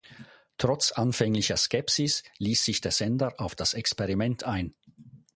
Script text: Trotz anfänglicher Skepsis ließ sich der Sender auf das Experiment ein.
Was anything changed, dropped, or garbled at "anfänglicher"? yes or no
no